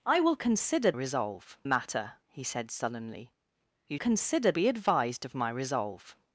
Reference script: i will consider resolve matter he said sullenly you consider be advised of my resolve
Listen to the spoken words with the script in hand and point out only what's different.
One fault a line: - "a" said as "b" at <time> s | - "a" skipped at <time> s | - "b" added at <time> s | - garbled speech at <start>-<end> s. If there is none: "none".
none